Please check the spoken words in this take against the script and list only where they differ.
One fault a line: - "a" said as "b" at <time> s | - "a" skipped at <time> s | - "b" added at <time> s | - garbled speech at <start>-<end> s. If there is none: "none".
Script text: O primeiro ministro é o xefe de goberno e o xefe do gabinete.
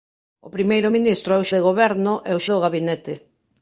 - "xefe" skipped at 1.5 s
- "xefe" skipped at 2.4 s